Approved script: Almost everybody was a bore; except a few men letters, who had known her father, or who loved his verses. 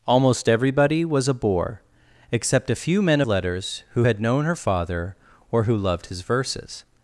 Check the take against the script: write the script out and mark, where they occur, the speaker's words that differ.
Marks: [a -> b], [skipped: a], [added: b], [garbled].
Almost everybody was a bore; except a few men letters, who had known her father, or who loved his verses.